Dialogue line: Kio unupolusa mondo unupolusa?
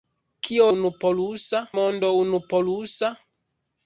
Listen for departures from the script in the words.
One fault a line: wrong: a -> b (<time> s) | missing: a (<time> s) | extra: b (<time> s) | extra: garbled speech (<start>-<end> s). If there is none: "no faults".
no faults